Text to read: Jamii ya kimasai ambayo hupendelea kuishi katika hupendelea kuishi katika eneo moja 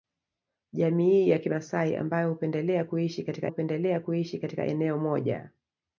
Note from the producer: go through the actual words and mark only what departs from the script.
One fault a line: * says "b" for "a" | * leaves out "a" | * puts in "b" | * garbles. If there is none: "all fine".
all fine